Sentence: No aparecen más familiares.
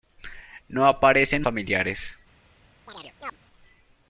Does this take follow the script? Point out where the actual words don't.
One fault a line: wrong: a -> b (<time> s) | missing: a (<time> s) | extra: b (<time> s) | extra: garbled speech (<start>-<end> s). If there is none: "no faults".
missing: más (1.4 s)